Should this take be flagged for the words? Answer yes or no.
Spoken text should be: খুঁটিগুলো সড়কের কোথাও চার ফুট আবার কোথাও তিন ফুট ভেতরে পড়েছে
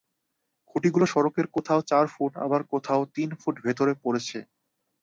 no